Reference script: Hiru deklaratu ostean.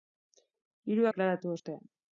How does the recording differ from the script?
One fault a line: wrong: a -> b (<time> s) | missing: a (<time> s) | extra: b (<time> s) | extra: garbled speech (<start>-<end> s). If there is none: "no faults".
no faults